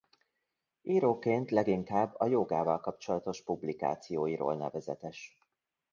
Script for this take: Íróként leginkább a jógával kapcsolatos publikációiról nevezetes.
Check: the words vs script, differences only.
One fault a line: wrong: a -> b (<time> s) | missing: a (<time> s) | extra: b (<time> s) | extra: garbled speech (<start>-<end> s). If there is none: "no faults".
no faults